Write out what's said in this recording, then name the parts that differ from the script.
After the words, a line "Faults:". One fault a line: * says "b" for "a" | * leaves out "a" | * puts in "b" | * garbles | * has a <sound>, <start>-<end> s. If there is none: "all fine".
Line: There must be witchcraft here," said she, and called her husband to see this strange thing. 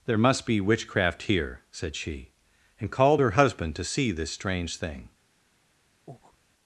There must be witchcraft here," said she, and called her husband to see this strange thing.
Faults:
* has a breath, 6.1-6.4 s